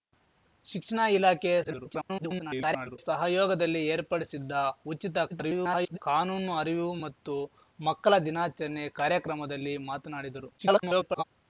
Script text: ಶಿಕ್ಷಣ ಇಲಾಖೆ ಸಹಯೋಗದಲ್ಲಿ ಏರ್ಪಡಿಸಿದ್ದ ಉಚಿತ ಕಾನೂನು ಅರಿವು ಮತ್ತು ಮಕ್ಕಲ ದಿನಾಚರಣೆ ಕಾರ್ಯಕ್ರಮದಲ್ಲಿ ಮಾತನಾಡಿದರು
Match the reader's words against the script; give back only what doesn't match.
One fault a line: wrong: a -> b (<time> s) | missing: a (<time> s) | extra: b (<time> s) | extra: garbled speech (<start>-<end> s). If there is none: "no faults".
extra: garbled speech (1.6-3.0 s)
extra: garbled speech (5.3-6.0 s)
extra: garbled speech (10.6-11.2 s)